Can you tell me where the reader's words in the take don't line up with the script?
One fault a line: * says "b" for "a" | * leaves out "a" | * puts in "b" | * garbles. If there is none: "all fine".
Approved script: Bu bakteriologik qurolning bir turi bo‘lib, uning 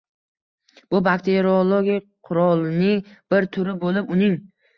all fine